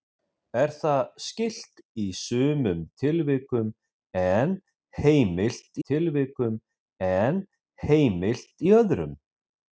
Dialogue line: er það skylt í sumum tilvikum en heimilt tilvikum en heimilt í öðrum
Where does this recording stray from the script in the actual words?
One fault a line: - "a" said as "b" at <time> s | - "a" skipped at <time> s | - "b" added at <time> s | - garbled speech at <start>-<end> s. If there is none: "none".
none